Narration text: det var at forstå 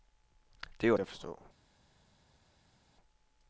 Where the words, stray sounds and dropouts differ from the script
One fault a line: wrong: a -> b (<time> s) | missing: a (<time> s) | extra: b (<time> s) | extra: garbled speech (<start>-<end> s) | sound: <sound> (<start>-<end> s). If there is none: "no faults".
no faults